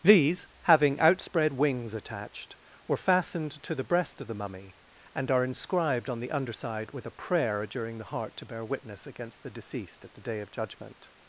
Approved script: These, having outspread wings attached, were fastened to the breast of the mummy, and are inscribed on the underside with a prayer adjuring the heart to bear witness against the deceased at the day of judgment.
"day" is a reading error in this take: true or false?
false